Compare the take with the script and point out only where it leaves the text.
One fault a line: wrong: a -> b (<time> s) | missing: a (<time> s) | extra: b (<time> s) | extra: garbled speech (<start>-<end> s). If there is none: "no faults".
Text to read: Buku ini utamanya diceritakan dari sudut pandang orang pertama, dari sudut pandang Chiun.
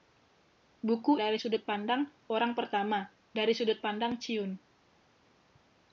missing: ini utamanya diceritakan (1.2 s)